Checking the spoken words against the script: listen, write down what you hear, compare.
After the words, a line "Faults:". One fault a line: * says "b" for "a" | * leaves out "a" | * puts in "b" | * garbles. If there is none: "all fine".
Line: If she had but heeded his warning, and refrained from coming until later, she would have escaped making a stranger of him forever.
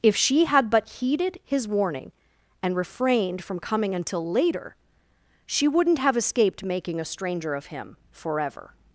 If she had but heeded his warning, and refrained from coming until later, she wouldn't have escaped making a stranger of him forever.
Faults:
* says "wouldn't" for "would"